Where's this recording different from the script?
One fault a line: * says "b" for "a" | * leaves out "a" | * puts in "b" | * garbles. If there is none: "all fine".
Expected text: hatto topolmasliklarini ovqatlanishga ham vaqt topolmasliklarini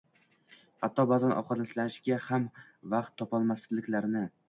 * says "ba'zan" for "topolmasliklarini"